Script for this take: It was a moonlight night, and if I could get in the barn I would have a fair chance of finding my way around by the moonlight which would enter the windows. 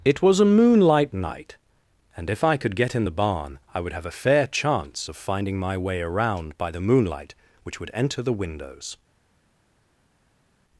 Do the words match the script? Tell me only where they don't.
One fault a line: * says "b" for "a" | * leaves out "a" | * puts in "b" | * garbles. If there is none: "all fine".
all fine